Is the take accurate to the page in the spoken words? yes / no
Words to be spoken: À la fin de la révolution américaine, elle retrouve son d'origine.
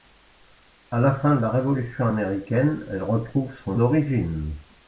yes